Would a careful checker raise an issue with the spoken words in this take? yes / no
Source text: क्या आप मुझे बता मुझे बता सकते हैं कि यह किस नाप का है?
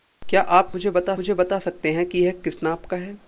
no